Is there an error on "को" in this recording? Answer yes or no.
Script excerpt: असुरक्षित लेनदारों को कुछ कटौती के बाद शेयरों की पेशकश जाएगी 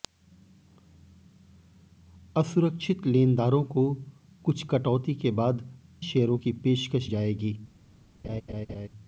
no